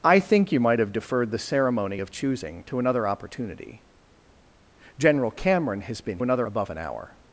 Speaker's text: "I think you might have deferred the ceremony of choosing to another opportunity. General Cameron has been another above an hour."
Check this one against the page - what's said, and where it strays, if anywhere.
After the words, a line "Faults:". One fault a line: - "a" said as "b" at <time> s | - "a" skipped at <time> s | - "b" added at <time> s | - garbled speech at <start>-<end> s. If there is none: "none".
"I think you might have deferred the ceremony of choosing to another opportunity. General Cameron has been another above an hour."
Faults:
none